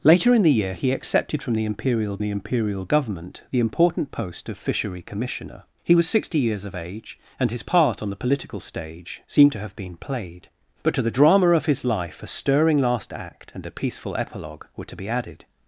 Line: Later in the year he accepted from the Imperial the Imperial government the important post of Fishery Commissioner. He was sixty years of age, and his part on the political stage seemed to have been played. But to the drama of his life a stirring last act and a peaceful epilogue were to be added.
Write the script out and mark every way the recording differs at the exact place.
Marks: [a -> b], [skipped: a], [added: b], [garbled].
Later in the year he accepted from the Imperial the Imperial government the important post of Fishery Commissioner. He was sixty years of age, and his part on the political stage seemed to have been played. But to the drama of his life a stirring last act and a peaceful epilogue were to be added.